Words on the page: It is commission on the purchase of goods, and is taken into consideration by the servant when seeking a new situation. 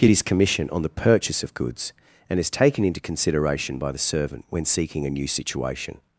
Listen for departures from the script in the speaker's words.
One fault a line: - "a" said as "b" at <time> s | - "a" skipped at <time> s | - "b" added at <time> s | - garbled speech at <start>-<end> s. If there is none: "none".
- "It is" said as "Get his" at 0.0 s